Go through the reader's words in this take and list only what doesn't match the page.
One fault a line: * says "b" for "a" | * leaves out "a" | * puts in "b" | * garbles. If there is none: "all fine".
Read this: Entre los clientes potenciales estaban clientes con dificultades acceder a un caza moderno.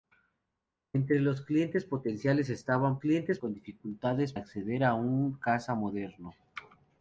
all fine